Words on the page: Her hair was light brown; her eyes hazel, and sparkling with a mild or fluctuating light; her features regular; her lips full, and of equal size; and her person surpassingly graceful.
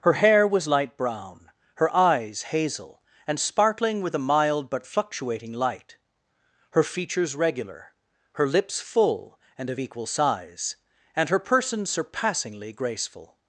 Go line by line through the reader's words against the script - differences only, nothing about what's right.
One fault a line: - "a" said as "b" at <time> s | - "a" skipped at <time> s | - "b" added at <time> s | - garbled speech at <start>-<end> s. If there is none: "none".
- "or" said as "but" at 4.7 s